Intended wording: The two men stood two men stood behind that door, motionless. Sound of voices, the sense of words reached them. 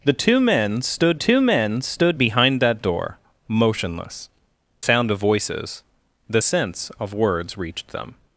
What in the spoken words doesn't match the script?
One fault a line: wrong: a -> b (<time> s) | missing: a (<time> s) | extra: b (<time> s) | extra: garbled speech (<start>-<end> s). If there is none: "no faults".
no faults